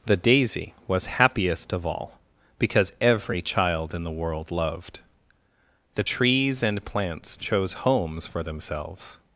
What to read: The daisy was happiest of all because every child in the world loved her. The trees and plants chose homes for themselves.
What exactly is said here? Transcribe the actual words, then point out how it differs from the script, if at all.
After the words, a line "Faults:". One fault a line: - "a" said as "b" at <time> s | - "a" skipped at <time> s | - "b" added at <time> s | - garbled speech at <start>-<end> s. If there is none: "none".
The daisy was happiest of all because every child in the world loved. The trees and plants chose homes for themselves.
Faults:
- "her" skipped at 5.0 s